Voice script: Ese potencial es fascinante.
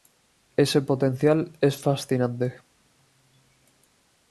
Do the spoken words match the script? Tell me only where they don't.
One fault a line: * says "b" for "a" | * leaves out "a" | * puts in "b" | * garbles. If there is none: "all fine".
all fine